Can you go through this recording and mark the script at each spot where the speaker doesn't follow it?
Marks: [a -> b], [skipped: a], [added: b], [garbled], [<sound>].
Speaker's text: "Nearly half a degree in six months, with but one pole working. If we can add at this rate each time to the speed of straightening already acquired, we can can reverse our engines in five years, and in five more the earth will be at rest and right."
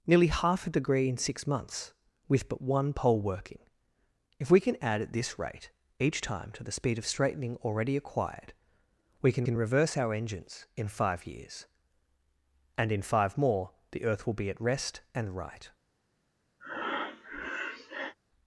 "Nearly half a degree in six months, with but one pole working. If we can add at this rate each time to the speed of straightening already acquired, we can can reverse our engines in five years, and in five more the earth will be at rest and right." [breath]